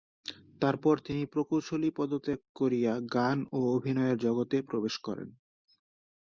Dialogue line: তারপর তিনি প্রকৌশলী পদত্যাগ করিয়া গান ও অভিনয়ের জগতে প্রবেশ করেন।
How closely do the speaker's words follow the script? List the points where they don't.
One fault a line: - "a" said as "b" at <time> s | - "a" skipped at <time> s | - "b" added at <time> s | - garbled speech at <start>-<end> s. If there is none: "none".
none